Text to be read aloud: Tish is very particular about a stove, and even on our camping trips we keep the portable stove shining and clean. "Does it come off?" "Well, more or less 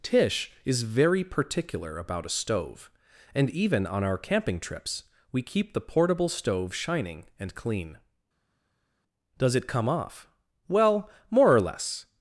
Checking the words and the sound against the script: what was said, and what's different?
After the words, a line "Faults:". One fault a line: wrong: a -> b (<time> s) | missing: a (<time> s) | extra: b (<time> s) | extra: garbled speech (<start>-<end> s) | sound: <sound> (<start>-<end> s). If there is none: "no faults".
Tish is very particular about a stove, and even on our camping trips we keep the portable stove shining and clean. "Does it come off?" "Well, more or less
Faults:
no faults